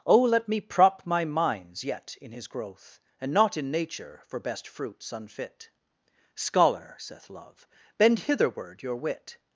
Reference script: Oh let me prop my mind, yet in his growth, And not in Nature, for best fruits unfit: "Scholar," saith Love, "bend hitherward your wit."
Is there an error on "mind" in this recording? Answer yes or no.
yes